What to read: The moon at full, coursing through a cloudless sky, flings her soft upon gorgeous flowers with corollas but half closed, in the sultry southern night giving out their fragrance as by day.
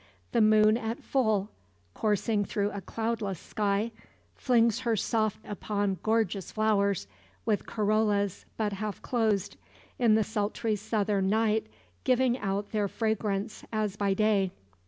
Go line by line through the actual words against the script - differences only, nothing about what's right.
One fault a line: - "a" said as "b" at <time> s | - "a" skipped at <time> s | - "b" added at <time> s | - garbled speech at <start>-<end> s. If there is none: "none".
none